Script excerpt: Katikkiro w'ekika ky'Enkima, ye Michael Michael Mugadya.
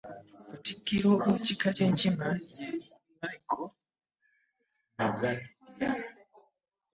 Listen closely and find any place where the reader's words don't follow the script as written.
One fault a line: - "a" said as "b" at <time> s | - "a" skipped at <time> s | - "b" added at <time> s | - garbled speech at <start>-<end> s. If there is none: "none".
- "Michael" skipped at 3.7 s